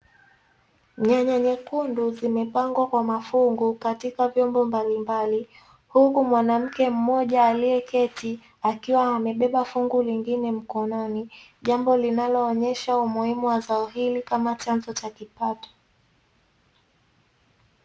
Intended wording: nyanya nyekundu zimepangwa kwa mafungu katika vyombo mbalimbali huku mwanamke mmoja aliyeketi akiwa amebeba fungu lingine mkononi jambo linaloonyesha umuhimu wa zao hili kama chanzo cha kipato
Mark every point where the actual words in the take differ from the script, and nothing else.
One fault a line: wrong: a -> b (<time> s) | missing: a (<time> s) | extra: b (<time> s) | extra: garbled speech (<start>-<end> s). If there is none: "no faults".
no faults